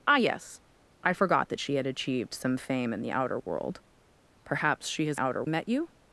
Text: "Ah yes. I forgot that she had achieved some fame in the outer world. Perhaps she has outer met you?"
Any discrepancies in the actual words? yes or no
no